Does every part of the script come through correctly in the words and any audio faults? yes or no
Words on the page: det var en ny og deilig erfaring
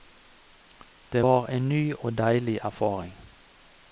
yes